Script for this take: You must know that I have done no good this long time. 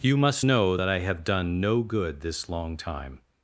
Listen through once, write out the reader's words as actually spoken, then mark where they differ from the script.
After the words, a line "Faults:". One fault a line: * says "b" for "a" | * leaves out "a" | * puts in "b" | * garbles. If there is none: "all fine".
You must know that I have done no good this long time.
Faults:
all fine